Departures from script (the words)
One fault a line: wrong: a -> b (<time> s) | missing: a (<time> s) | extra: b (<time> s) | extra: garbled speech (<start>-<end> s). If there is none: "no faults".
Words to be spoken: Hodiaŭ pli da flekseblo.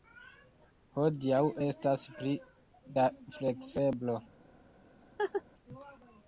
extra: estas (1.7 s)